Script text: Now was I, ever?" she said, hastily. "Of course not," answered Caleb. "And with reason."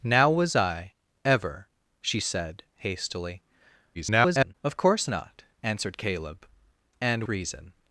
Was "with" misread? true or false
true